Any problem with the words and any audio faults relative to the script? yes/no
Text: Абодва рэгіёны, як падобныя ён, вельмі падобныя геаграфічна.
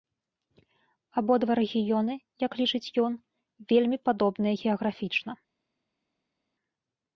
yes